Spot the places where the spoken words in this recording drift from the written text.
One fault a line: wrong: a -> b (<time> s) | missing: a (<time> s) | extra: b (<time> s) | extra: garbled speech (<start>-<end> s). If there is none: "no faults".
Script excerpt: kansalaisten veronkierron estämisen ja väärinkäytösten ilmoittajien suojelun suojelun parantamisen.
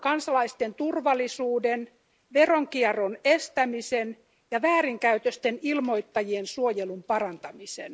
extra: turvallisuuden (0.8 s)
missing: suojelun (7.0 s)